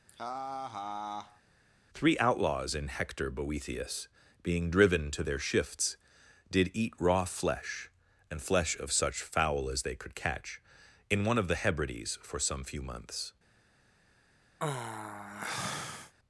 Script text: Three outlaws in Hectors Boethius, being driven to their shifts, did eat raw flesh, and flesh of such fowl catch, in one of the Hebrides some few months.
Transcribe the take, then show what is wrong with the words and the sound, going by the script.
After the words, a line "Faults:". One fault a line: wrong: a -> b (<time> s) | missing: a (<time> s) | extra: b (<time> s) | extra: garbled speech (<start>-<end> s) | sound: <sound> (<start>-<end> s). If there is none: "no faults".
Three outlaws in Hector Boethius, being driven to their shifts, did eat raw flesh, and flesh of such fowl as they could catch, in one of the Hebrides for some few months.
Faults:
sound: laugh (0.1-1.4 s)
wrong: Hectors -> Hector (2.9 s)
extra: as they could (9.7 s)
extra: for (12.2 s)
sound: sigh (14.6-16.1 s)